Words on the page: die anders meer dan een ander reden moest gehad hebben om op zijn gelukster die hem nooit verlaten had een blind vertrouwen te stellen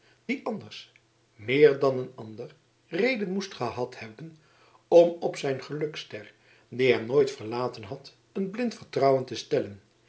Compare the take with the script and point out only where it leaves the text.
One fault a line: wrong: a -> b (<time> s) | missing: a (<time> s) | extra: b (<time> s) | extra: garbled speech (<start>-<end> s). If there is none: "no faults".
no faults